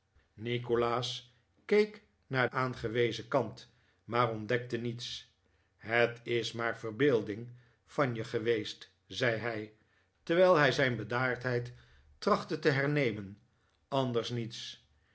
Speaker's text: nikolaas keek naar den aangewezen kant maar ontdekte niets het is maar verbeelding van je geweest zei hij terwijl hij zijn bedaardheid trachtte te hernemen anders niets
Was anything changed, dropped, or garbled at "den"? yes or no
yes